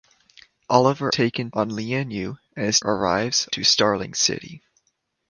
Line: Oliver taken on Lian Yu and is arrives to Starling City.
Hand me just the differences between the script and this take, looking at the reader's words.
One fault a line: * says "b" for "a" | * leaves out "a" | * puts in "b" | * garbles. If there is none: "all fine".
all fine